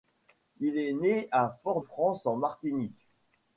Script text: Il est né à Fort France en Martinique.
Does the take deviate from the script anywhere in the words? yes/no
no